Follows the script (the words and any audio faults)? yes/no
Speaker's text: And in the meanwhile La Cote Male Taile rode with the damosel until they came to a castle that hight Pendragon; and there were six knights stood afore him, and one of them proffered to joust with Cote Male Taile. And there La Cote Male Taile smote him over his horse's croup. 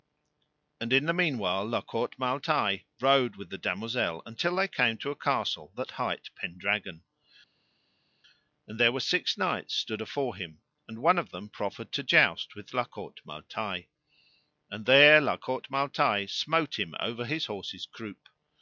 no